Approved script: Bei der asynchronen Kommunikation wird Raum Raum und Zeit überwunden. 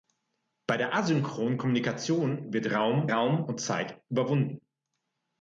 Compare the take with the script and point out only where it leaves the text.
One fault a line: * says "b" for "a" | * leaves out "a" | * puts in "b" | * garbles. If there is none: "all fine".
all fine